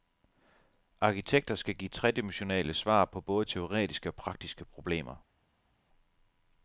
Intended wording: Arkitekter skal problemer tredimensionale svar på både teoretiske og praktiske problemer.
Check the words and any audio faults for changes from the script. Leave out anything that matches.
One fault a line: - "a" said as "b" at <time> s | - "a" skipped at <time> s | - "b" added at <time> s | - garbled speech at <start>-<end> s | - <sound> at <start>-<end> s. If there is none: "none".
- "problemer" said as "give" at 1.8 s